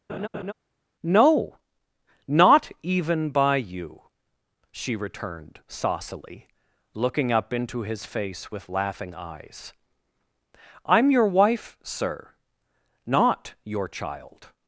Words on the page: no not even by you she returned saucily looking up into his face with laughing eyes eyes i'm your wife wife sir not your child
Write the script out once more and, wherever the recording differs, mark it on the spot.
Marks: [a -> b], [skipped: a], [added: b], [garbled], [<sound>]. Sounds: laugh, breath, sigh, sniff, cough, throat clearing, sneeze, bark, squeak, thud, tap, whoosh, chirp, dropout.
[laugh] no not even by you she returned saucily looking up into his face with laughing eyes [skipped: eyes] i'm your wife [skipped: wife] sir not your child